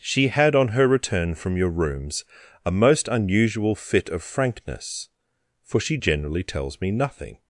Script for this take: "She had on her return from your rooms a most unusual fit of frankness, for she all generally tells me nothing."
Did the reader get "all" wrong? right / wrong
wrong